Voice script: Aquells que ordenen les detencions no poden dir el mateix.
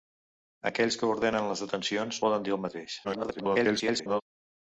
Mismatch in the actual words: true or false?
true